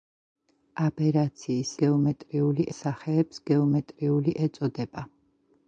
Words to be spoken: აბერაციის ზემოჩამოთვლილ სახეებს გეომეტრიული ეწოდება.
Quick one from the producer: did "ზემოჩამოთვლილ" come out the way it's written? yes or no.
no